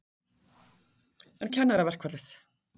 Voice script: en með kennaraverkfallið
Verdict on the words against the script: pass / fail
pass